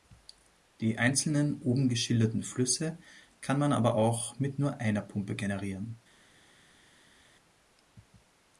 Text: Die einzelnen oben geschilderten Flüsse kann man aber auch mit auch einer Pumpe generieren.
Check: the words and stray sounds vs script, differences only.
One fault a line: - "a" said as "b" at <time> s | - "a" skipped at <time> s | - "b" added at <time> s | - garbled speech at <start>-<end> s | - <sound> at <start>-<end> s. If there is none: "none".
- "auch" said as "nur" at 4.6 s